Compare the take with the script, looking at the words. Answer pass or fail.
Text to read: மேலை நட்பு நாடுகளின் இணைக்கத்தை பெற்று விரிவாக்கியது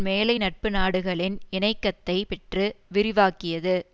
pass